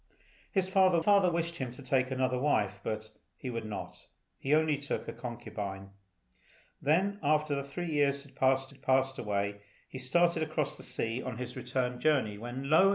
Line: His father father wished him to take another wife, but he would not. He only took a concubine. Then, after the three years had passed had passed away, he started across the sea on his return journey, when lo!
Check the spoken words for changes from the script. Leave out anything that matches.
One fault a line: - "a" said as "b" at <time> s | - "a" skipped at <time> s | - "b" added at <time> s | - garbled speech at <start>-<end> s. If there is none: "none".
none